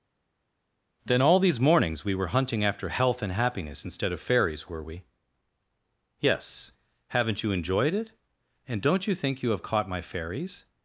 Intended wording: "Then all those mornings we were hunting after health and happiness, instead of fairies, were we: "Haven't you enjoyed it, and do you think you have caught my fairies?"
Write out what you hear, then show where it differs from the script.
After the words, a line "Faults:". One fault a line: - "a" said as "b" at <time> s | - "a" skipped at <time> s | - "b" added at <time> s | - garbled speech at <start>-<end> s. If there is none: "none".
"Then all these mornings we were hunting after health and happiness, instead of fairies, were we?" "Yes: haven't you enjoyed it, and don't you think you have caught my fairies?"
Faults:
- "those" said as "these" at 1.4 s
- "Yes" added at 6.2 s
- "do" said as "don't" at 8.8 s